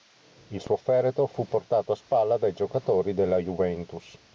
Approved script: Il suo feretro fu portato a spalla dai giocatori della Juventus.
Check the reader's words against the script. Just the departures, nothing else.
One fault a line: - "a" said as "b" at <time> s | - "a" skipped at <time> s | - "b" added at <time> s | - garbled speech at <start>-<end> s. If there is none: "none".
none